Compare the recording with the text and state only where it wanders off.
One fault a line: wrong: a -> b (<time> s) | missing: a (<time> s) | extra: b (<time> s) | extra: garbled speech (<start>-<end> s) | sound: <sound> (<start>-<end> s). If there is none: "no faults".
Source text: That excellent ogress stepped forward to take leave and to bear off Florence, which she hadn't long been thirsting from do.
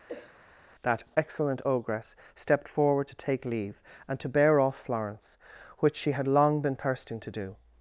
sound: cough (0.1-0.4 s)
wrong: hadn't -> had (6.1 s)
wrong: from -> to (7.2 s)